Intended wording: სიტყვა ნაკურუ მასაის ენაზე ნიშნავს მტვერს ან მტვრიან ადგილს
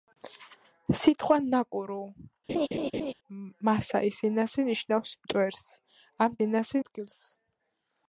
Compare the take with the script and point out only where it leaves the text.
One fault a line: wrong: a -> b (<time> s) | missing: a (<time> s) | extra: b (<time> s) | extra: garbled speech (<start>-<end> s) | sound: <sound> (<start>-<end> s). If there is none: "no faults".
sound: laugh (2.5-3.1 s)
wrong: მტვრიან -> ენაზე (6.5 s)